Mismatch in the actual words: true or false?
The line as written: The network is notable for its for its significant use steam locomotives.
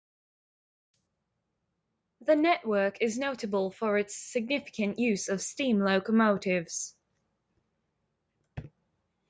true